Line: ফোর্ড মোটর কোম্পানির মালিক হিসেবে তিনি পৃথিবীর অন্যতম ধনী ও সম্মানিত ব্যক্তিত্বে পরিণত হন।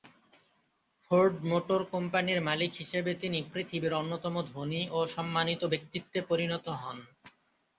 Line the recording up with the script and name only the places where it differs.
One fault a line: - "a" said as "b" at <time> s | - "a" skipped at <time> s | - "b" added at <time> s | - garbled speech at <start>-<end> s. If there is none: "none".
none